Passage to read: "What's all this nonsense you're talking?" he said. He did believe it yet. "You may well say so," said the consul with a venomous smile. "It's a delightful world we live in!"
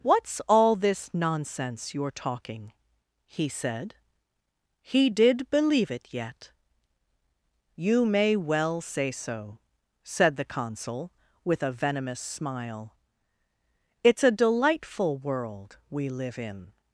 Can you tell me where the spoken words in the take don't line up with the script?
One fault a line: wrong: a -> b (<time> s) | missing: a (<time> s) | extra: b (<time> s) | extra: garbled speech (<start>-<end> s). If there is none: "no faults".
no faults